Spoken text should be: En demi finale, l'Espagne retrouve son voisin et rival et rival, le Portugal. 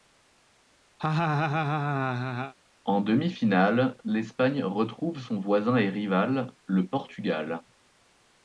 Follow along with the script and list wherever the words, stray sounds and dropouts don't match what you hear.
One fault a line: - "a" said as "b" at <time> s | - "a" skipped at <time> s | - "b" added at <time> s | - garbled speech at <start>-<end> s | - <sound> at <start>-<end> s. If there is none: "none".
- laugh at 1.0-2.5 s
- "et rival" skipped at 6.5 s